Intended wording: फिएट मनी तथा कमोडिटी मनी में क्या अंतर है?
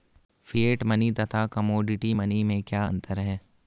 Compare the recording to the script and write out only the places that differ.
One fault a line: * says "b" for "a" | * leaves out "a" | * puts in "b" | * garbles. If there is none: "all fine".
all fine